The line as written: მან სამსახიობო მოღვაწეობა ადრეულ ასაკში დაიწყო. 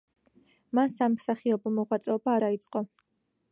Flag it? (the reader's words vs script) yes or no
yes